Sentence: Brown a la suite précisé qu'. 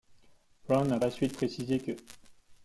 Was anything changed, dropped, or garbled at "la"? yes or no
no